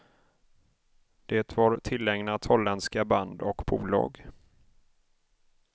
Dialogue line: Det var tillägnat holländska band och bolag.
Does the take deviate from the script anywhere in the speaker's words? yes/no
no